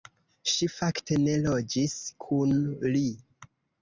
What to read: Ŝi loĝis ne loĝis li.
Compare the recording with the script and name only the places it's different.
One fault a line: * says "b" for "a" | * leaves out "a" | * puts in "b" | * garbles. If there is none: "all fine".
* says "fakte" for "loĝis"
* puts in "kun"